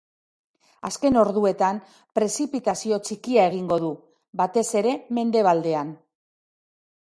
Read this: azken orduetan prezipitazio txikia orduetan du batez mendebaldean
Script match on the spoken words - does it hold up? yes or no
no